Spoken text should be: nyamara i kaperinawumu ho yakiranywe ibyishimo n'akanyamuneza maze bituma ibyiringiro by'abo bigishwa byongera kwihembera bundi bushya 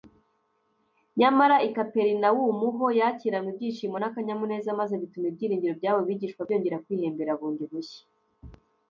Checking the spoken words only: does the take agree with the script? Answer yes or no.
yes